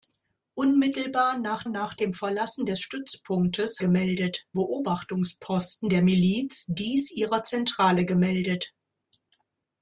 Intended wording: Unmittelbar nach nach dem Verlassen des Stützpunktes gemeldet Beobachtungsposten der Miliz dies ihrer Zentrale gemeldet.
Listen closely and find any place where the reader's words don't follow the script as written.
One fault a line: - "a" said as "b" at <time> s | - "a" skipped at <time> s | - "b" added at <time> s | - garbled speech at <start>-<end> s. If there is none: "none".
none